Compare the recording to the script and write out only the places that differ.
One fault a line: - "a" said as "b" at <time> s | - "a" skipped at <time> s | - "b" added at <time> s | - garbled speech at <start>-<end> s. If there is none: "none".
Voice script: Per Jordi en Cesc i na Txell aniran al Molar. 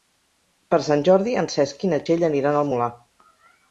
- "Sant" added at 0.9 s